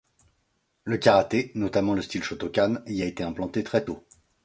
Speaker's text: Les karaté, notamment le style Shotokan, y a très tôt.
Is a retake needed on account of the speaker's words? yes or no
yes